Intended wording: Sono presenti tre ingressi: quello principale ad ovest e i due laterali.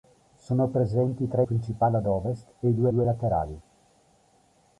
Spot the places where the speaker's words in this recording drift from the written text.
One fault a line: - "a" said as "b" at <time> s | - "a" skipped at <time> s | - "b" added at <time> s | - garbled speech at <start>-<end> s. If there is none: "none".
- "ingressi quello" skipped at 1.4 s
- "due" added at 2.9 s